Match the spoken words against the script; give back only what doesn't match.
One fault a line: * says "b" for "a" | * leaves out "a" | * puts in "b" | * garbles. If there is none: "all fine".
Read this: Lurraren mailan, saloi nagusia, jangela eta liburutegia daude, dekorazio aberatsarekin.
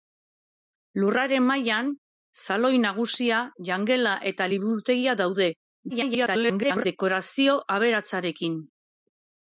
* garbles